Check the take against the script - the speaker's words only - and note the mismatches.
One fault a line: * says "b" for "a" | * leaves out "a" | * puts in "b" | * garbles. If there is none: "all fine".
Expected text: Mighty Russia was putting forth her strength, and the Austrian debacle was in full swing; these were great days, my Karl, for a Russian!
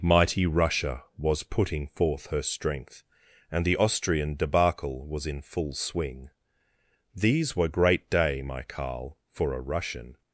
* says "day" for "days"